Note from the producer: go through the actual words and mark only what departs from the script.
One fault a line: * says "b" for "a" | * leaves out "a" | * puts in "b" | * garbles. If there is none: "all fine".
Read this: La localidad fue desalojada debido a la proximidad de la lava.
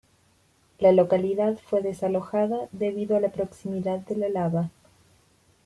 all fine